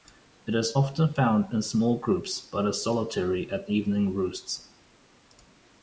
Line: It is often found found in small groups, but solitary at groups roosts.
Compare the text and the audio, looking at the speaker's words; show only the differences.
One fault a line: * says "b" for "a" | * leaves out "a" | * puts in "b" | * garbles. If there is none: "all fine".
* leaves out "found"
* puts in "is"
* says "evening" for "groups"